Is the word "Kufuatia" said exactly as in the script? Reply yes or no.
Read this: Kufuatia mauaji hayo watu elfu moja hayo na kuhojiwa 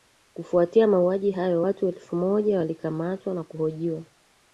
yes